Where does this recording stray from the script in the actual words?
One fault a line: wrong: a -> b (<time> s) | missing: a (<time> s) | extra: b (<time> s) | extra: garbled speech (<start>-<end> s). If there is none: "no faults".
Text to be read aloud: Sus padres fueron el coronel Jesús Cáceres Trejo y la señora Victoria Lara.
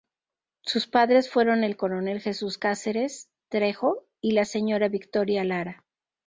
no faults